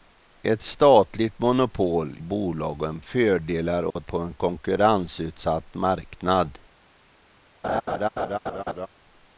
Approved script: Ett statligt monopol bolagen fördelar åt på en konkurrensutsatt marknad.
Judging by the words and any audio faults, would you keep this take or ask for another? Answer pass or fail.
fail